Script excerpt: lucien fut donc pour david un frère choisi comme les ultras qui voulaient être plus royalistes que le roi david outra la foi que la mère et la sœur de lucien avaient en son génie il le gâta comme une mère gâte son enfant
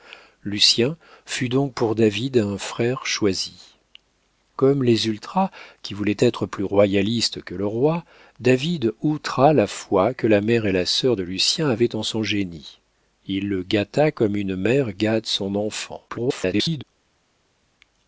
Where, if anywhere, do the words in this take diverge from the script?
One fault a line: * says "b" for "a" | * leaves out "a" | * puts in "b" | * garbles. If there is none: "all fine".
* garbles